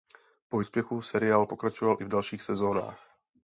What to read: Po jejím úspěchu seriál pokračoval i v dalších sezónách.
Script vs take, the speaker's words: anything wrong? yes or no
yes